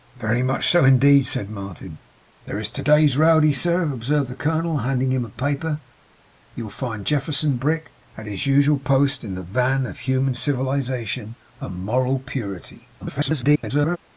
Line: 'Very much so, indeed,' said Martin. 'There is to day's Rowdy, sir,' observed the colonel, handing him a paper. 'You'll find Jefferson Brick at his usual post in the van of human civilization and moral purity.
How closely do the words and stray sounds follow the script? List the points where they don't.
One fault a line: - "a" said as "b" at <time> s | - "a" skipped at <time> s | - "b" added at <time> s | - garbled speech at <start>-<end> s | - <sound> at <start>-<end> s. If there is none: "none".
- garbled speech at 13.0-14.0 s